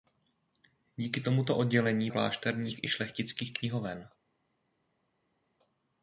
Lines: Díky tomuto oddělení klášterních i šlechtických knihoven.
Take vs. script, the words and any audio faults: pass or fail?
pass